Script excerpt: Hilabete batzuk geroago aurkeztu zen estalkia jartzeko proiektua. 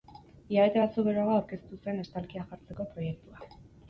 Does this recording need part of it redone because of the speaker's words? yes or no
no